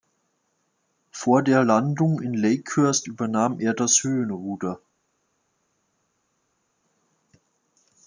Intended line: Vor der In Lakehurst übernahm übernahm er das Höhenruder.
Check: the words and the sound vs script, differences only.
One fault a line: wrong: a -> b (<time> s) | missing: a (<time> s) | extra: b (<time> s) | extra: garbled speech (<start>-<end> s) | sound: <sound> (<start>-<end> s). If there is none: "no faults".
extra: Landung (1.6 s)
missing: übernahm (3.6 s)